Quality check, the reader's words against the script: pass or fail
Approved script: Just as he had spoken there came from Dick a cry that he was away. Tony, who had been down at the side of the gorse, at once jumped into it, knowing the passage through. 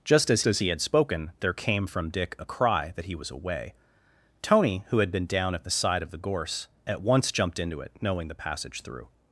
fail